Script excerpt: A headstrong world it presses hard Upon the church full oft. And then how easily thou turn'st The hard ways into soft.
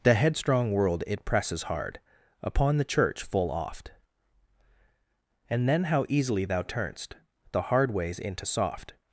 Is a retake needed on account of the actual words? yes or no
yes